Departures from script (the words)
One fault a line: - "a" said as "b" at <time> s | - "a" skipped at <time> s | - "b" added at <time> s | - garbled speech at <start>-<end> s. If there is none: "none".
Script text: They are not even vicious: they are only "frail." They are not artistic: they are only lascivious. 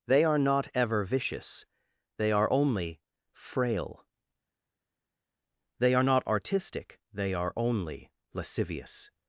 - "even" said as "ever" at 0.7 s